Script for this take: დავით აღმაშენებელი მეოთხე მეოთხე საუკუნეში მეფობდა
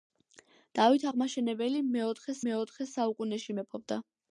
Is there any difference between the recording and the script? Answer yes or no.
no